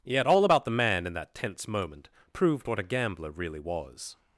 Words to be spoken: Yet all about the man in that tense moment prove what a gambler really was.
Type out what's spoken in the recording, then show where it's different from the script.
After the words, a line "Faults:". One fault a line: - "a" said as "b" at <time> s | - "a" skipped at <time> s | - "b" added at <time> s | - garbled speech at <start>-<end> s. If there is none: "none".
Yet all about the man in that tense moment proved what a gambler really was.
Faults:
- "prove" said as "proved" at 2.3 s